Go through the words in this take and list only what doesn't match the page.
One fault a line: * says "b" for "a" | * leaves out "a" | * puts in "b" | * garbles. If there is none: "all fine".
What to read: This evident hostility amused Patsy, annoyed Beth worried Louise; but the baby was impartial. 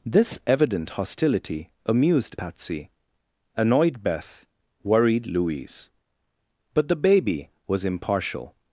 all fine